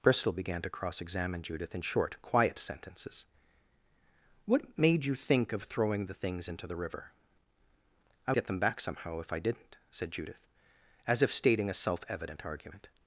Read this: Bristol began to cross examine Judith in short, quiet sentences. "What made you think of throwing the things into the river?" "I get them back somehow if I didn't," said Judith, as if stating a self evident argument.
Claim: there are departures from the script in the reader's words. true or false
false